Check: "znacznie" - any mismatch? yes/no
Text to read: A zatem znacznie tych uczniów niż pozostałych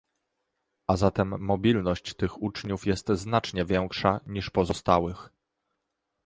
yes